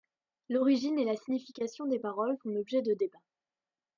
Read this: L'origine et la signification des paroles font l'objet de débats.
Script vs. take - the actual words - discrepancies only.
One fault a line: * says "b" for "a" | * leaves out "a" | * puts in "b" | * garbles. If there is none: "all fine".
all fine